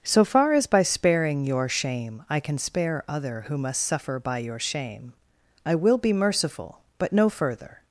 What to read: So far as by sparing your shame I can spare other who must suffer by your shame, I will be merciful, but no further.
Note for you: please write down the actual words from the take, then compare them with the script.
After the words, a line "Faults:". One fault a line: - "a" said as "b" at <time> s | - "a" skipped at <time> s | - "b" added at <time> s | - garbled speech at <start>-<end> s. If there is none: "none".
So far as by sparing your shame I can spare other who must suffer by your shame, I will be merciful, but no further.
Faults:
none